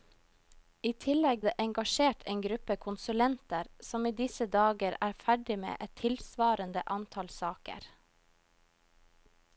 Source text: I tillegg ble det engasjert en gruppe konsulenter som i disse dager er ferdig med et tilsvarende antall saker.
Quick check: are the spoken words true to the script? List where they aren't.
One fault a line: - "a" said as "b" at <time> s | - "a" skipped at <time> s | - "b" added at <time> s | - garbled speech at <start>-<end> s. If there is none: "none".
- "ble" skipped at 1.4 s